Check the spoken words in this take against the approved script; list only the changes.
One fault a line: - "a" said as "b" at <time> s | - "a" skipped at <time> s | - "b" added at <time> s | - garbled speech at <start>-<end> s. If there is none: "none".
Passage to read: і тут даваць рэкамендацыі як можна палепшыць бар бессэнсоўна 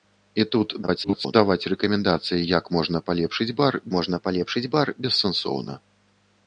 - garbled speech at 0.8-1.3 s
- "можна палепшыць бар" added at 4.0 s